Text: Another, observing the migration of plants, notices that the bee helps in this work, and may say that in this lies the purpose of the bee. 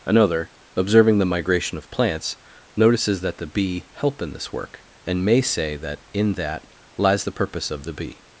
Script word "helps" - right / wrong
wrong